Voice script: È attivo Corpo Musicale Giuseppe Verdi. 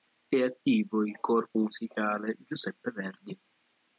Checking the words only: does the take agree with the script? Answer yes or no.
no